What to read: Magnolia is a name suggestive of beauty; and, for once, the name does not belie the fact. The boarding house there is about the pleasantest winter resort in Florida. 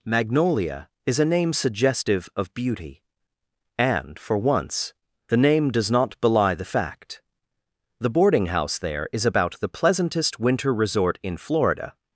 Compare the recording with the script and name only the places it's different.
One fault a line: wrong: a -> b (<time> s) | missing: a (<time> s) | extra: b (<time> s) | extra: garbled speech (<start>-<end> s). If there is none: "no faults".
no faults